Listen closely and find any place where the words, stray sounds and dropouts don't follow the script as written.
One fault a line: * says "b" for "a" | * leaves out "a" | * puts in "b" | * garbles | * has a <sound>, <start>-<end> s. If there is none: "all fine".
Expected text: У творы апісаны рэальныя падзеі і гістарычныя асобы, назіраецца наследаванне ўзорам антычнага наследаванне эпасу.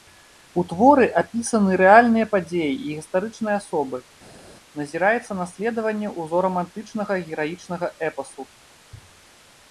* says "гераічнага" for "наследаванне"